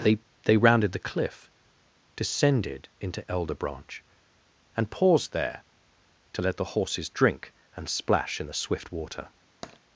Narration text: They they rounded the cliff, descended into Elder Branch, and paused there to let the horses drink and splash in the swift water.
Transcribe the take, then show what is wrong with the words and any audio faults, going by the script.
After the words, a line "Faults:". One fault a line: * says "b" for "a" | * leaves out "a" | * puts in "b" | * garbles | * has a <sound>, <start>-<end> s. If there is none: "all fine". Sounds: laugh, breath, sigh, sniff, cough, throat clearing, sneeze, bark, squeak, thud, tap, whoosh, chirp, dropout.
They they rounded the cliff, descended into Elder Branch, and paused there to let the horses drink and splash in the swift water.
Faults:
* has a tap, 9.6-9.8 s